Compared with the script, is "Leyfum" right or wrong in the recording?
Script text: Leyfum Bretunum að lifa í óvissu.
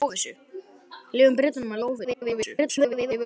right